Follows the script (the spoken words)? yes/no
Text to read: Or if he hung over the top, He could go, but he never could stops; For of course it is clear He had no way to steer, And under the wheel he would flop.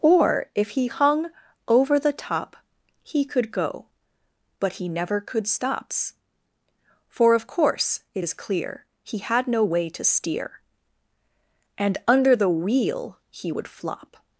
yes